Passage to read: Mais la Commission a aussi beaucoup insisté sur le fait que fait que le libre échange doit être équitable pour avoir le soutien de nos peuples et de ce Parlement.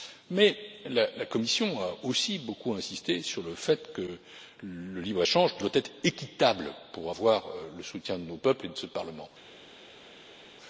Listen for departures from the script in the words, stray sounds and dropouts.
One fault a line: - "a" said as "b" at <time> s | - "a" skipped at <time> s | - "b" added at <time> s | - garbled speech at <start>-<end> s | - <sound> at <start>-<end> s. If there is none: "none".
- "fait que" skipped at 4.2 s